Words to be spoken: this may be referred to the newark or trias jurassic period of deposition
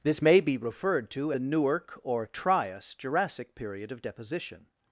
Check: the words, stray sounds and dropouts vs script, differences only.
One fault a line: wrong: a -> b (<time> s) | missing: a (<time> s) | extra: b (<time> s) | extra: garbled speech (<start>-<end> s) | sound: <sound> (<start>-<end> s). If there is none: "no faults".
no faults